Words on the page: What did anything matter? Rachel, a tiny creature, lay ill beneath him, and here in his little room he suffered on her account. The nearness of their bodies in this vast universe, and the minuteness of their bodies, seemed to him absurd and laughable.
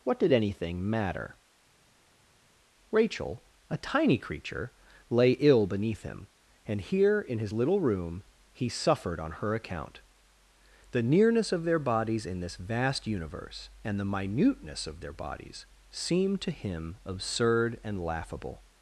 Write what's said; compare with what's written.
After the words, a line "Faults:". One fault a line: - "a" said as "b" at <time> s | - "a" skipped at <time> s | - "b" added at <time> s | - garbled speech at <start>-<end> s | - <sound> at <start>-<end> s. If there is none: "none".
What did anything matter? Rachel, a tiny creature, lay ill beneath him, and here in his little room he suffered on her account. The nearness of their bodies in this vast universe, and the minuteness of their bodies, seemed to him absurd and laughable.
Faults:
none